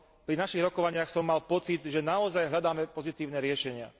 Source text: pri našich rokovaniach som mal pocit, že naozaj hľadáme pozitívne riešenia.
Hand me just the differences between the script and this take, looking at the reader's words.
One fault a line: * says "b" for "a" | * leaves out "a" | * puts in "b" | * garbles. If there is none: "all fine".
all fine